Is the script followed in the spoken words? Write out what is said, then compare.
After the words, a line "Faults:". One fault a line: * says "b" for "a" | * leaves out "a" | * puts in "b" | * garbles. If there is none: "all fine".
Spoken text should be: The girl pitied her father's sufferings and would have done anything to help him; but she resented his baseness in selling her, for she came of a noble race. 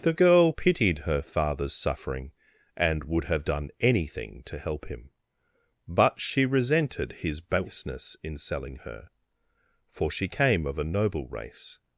The girl pitied her father's suffering and would have done anything to help him; but she resented his baseness in selling her, for she came of a noble race.
Faults:
* says "suffering" for "sufferings"